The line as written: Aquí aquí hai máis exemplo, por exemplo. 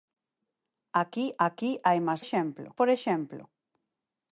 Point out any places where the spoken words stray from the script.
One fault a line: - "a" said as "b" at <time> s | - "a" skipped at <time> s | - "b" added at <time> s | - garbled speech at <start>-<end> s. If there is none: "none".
none